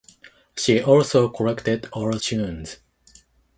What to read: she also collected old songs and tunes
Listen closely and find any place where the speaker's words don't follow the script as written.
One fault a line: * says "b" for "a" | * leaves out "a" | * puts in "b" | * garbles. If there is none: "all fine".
* leaves out "songs and"